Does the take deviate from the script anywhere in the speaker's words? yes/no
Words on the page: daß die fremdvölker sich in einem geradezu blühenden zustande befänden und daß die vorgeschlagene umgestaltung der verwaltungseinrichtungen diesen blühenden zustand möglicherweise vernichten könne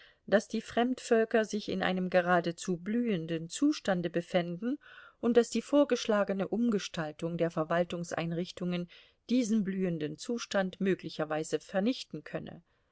no